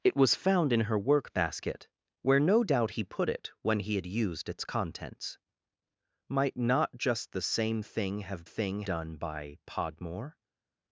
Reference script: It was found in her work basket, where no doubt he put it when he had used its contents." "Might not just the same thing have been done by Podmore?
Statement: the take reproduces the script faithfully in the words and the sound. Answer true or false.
false